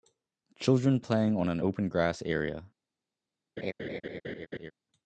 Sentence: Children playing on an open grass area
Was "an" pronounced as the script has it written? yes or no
yes